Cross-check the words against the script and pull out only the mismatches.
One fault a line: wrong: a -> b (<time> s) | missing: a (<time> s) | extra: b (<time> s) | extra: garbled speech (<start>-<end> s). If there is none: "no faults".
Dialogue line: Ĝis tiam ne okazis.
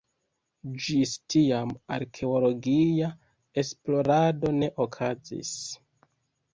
extra: arkeologia esplorado (2.0 s)